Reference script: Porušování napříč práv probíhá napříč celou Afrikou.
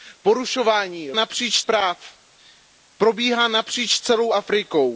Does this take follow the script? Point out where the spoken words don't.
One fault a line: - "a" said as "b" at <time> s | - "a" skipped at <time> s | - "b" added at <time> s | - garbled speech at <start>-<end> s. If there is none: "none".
none